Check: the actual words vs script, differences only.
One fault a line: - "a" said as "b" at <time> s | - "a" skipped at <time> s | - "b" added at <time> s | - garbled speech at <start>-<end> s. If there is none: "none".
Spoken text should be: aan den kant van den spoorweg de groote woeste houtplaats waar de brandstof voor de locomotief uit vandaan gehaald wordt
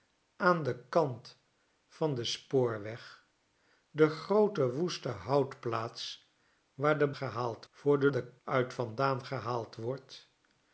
- "brandstof" said as "gehaald" at 7.2 s
- "locomotief" said as "den" at 8.1 s